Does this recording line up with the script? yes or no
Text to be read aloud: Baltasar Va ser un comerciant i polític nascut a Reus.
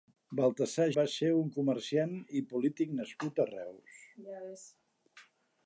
yes